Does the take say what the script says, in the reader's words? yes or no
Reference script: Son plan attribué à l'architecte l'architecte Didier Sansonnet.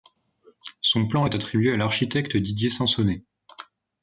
no